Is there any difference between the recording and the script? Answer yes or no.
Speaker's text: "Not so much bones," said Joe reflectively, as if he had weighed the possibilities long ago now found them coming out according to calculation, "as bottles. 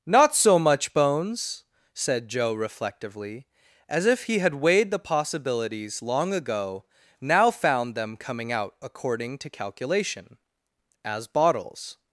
no